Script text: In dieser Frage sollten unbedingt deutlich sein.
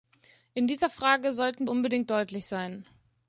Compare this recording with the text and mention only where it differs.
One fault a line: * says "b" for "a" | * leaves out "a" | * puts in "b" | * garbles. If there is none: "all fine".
all fine